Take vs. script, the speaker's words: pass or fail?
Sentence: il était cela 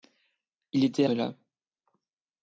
pass